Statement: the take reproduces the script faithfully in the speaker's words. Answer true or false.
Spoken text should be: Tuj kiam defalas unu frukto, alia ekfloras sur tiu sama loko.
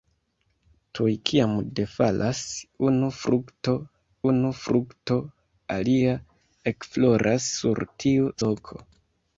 false